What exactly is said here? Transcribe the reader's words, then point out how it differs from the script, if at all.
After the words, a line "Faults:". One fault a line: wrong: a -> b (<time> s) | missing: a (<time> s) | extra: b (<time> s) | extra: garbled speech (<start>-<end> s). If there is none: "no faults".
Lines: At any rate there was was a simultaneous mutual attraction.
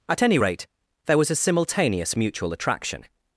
At any rate there was a simultaneous mutual attraction.
Faults:
missing: was (1.3 s)